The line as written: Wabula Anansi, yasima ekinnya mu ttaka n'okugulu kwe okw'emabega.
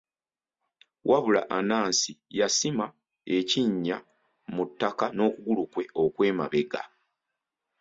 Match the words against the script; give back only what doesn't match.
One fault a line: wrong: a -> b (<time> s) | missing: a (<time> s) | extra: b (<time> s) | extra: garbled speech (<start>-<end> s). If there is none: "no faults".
no faults